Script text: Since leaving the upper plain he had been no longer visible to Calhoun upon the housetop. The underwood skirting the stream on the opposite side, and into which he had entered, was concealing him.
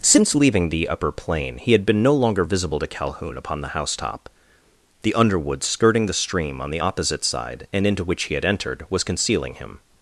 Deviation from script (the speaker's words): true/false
false